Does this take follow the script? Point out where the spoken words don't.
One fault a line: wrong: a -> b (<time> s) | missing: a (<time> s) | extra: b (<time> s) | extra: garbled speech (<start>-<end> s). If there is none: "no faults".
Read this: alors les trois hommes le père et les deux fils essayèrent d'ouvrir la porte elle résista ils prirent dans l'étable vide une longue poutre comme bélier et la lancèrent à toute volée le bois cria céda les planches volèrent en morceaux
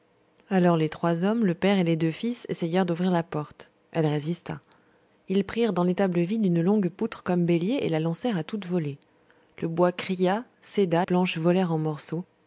missing: les (11.1 s)